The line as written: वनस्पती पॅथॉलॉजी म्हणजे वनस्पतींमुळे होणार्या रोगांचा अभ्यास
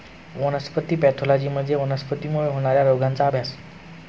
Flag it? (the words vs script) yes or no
no